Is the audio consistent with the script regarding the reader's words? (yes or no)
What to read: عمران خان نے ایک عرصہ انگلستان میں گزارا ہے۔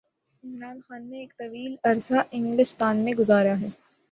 no